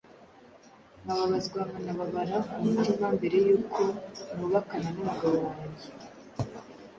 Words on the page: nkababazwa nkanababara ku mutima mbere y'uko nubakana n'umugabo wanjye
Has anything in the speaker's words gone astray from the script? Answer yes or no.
no